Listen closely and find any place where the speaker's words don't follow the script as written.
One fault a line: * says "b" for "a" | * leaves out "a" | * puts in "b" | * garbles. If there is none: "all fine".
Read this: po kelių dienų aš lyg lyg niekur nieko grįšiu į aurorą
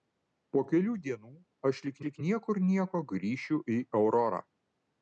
all fine